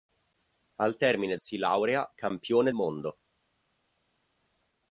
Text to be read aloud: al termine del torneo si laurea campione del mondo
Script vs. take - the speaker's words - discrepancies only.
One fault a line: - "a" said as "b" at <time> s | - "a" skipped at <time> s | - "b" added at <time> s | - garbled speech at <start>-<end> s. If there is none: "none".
- "del torneo" skipped at 1.4 s
- "del" skipped at 2.7 s